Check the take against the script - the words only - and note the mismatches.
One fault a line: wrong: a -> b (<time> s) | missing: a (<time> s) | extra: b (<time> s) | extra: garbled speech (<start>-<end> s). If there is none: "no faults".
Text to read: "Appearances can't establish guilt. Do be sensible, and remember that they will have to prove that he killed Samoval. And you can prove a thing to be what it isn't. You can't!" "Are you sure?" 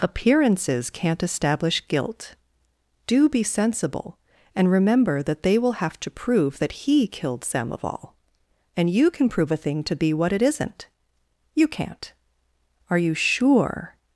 no faults